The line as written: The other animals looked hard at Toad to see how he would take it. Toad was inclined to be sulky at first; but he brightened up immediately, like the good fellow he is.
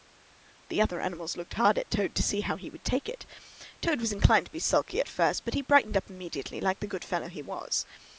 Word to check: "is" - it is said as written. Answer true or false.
false